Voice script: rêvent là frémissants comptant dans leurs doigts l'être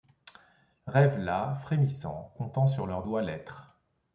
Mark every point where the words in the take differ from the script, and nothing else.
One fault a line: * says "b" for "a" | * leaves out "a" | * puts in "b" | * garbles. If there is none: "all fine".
* says "sur" for "dans"